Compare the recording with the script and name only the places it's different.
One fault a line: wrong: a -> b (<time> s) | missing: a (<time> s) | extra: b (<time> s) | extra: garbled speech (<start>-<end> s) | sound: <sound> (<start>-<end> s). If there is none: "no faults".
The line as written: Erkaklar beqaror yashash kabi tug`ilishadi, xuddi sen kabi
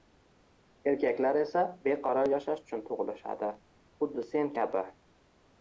extra: esa (1.4 s)
wrong: kabi -> uchun (2.7 s)